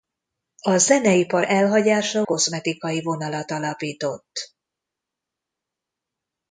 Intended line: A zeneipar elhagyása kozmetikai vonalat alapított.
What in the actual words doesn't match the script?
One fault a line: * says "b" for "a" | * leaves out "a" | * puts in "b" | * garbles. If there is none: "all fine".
all fine